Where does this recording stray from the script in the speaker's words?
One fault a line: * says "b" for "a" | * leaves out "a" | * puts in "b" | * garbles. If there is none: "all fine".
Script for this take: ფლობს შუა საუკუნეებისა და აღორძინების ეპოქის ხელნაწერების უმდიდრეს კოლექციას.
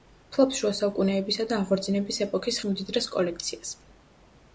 * leaves out "ხელნაწერების"